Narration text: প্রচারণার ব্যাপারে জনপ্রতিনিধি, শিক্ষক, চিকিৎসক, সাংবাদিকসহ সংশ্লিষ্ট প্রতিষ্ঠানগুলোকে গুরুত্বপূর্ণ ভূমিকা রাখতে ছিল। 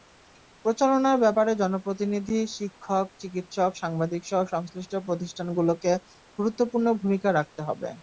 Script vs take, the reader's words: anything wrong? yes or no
yes